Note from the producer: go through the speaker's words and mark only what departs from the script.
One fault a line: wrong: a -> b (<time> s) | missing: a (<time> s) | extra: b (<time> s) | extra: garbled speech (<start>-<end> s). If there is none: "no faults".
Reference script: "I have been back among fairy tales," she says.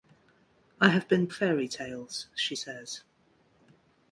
missing: back among (1.3 s)